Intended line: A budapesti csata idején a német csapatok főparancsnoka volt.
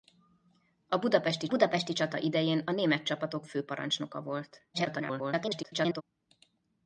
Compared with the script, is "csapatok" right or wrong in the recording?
right